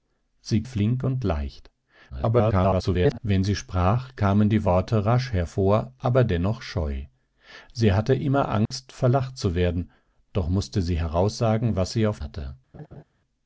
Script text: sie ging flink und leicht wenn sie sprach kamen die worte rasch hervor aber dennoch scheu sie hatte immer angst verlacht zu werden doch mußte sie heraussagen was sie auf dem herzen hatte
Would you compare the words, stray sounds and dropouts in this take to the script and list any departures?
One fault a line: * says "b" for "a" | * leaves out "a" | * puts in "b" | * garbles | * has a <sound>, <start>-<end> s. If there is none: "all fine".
* leaves out "ging"
* garbles
* has a dropout, 8.7-8.7 s
* leaves out "dem herzen"
* has a laugh, 12.7-13.0 s